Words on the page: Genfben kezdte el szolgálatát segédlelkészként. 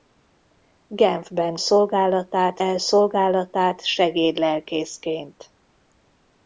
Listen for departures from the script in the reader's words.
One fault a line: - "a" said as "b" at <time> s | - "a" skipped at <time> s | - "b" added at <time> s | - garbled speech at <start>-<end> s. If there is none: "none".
- "kezdte" said as "szolgálatát" at 1.6 s